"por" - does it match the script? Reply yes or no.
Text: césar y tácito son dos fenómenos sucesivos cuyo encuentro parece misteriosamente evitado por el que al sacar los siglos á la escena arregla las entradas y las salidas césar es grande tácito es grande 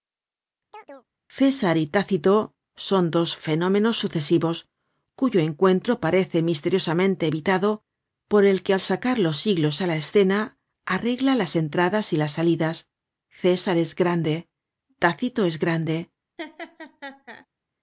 yes